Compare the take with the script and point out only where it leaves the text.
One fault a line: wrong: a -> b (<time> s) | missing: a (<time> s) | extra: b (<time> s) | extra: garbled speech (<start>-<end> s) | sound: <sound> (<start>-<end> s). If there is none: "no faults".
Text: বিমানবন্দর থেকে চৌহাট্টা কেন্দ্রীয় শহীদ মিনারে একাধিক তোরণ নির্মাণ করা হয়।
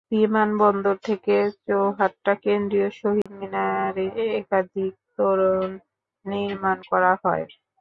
sound: dropout (3.2-3.3 s)